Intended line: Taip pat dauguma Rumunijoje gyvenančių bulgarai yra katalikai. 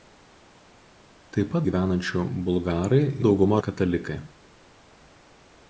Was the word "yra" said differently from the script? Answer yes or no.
yes